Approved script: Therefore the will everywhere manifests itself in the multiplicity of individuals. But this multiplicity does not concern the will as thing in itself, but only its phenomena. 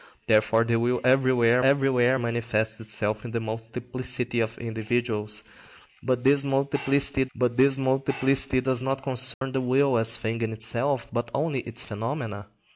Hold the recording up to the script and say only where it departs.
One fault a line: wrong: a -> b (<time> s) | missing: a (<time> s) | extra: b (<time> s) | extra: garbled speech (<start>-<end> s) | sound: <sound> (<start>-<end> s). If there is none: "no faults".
extra: everywhere (1.6 s)
extra: but this multiplicity (7.3 s)
sound: dropout (9.3-9.4 s)